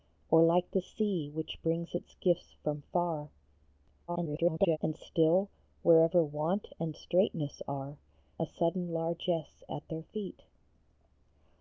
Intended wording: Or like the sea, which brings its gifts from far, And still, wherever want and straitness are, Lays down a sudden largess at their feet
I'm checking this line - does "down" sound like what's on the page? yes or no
no